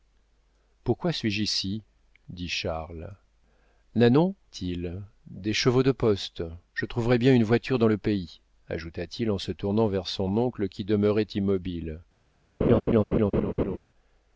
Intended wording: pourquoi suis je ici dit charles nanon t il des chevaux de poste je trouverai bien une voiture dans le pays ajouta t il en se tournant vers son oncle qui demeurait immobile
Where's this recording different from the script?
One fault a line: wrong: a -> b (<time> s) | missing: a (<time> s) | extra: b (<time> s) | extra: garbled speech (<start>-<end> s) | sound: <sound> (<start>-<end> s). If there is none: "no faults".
sound: laugh (12.6-13.8 s)